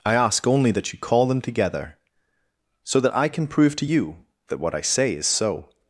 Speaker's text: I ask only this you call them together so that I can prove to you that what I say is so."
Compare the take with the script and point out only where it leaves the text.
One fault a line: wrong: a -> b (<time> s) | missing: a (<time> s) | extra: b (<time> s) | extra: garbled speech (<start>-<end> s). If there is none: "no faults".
wrong: this -> that (0.7 s)